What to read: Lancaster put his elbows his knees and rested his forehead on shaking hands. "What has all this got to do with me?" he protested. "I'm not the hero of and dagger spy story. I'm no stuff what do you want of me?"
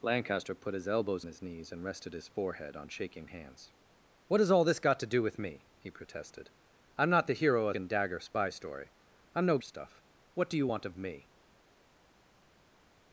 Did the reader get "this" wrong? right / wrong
right